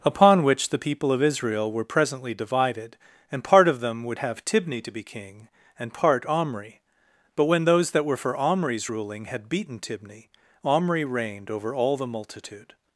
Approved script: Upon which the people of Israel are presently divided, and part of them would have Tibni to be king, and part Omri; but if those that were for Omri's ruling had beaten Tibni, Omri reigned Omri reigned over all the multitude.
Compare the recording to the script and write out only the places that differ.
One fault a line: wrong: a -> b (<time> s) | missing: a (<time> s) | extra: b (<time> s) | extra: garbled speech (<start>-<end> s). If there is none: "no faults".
wrong: are -> were (1.7 s)
wrong: if -> when (7.4 s)
missing: Omri reigned (11.5 s)